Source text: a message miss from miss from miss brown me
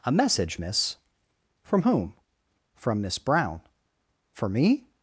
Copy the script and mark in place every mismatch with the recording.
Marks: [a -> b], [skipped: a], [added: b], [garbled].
a message miss from [miss -> whom] from miss brown [added: for] me